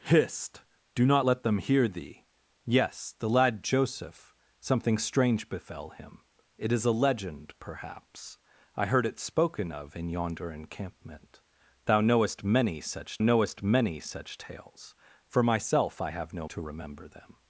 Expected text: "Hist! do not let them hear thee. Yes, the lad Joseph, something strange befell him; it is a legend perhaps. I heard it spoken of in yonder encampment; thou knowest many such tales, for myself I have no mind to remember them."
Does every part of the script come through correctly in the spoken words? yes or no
no